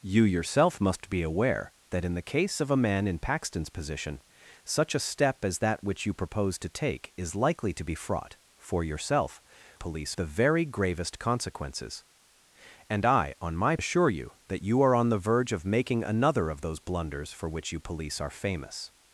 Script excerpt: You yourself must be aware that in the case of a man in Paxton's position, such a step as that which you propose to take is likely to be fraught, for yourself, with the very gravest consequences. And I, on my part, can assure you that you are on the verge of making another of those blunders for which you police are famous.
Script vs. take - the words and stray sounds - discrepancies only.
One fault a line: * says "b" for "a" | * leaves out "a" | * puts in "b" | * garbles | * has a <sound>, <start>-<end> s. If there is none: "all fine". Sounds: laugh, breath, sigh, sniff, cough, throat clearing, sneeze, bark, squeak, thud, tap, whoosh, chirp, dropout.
* says "police" for "with"
* leaves out "part can"